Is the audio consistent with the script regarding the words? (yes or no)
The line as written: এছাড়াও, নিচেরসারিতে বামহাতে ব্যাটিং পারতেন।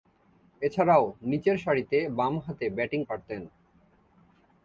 yes